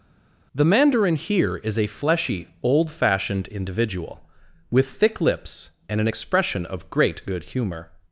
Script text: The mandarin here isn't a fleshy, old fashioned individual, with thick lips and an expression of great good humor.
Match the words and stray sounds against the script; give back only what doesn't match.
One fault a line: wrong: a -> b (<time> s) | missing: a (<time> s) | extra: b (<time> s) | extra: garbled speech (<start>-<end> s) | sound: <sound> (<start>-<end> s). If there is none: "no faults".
wrong: isn't -> is (1.6 s)